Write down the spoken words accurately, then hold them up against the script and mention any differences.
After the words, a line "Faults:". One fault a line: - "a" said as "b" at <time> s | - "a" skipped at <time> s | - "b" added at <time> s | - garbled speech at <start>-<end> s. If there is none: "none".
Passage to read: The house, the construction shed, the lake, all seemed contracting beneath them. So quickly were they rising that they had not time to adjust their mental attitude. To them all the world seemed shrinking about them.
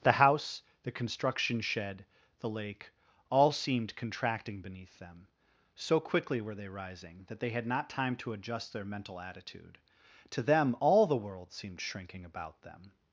The house, the construction shed, the lake, all seemed contracting beneath them. So quickly were they rising that they had not time to adjust their mental attitude. To them all the world seemed shrinking about them.
Faults:
none